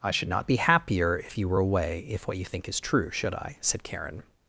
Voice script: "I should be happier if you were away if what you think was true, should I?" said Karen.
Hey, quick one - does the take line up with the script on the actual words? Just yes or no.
no